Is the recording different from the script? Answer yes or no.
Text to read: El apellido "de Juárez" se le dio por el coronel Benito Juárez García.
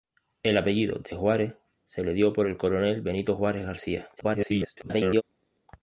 yes